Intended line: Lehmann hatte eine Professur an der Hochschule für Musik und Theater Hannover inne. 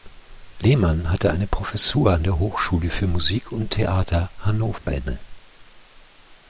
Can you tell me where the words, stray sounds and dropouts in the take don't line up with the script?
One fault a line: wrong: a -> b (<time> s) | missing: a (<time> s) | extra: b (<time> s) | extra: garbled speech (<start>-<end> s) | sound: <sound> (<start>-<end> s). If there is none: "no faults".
sound: dropout (4.8-4.9 s)